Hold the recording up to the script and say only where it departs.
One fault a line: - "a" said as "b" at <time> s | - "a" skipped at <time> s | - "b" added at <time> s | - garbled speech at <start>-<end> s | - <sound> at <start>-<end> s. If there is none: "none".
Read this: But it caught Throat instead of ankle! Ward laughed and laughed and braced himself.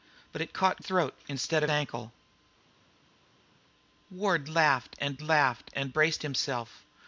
none